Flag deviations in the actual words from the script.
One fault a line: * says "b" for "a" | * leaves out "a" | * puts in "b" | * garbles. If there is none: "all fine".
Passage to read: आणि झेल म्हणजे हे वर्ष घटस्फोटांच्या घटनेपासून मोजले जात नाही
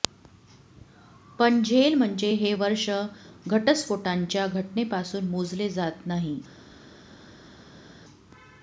* says "पण" for "आणि"